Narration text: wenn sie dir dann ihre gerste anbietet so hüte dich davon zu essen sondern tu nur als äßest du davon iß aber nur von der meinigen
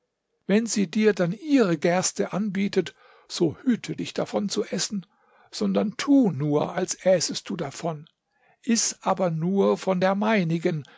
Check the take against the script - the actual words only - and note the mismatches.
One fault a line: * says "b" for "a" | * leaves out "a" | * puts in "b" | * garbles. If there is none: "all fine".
all fine